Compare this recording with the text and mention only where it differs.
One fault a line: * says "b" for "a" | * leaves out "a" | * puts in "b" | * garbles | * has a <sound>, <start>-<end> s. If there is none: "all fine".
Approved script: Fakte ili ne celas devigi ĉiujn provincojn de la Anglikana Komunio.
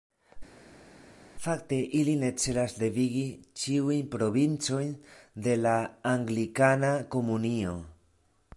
all fine